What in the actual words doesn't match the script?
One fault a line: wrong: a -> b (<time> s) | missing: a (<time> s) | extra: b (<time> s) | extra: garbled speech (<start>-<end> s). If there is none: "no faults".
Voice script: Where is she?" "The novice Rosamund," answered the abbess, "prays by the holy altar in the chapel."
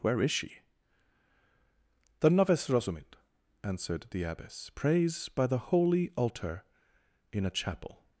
wrong: the -> a (7.5 s)